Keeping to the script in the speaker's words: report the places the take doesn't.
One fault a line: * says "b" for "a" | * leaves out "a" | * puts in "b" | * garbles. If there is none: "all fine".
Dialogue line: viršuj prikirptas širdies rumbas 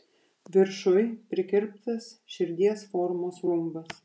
* puts in "formos"